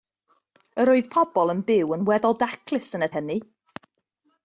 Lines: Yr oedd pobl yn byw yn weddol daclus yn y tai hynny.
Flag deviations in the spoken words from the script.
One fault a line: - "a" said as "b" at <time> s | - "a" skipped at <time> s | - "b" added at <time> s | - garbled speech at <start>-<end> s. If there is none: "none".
- "tai" skipped at 3.1 s